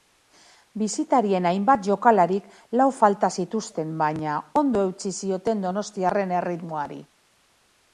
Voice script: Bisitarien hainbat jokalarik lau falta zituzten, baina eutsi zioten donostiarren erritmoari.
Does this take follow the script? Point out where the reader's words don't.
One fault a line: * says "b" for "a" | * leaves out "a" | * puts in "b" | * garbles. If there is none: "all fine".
* puts in "ondo"